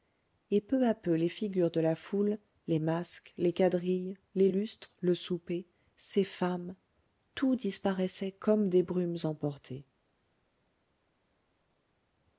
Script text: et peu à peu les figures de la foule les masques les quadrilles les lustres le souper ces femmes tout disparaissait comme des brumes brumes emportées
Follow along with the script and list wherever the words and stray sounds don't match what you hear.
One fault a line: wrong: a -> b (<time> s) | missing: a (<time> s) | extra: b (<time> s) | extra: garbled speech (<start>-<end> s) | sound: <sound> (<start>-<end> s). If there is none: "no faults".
missing: brumes (9.2 s)